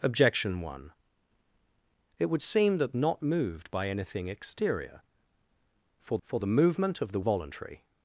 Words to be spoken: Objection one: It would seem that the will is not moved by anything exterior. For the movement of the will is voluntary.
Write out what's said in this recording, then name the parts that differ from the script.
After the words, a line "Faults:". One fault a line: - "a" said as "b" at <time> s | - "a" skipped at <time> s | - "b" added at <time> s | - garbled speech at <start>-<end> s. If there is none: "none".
Objection one: It would seem that not moved by anything exterior. For for the movement of the voluntary.
Faults:
- "the will is" skipped at 2.9 s
- "for" added at 6.2 s
- "will is" skipped at 7.2 s